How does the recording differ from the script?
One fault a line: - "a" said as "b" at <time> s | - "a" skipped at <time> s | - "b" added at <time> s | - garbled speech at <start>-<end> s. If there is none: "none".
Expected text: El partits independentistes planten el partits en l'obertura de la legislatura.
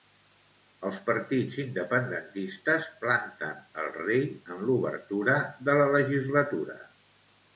- "El" said as "Els" at 0.9 s
- "partits" said as "rei" at 4.0 s